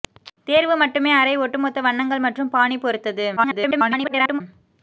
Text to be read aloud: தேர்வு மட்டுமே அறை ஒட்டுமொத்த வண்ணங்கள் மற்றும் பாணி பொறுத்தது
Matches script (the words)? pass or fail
fail